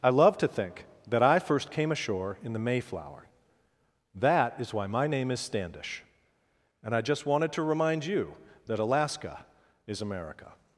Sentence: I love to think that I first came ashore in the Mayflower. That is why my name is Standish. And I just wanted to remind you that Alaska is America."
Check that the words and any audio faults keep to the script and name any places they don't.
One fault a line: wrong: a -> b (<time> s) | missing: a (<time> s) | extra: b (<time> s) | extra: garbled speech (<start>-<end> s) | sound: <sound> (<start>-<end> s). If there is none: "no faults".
no faults